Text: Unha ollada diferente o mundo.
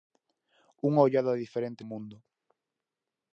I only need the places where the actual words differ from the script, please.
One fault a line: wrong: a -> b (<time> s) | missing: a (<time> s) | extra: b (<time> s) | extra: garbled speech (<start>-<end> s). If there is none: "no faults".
no faults